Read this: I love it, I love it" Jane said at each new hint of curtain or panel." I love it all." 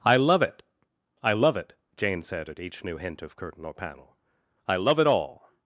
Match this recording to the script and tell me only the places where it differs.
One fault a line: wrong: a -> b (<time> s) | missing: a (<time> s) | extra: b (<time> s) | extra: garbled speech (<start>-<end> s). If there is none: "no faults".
no faults